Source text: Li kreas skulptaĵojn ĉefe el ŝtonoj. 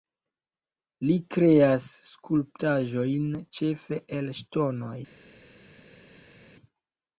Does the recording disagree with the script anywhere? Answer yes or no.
no